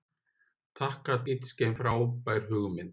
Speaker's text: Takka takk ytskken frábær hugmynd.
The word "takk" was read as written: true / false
false